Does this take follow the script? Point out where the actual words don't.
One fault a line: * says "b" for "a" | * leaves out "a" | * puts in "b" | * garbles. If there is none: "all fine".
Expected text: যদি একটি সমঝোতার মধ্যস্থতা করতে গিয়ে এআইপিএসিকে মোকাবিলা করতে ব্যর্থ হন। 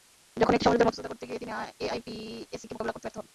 * says "যখন" for "যদি"
* puts in "তিনি"